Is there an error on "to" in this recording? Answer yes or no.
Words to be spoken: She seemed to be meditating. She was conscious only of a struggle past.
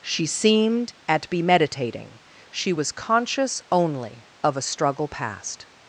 yes